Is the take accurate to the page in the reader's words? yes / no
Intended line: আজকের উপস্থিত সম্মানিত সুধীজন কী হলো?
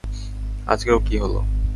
no